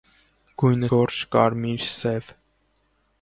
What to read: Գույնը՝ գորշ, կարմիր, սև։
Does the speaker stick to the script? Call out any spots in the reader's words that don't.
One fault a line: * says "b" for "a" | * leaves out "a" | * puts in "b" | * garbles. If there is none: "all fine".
all fine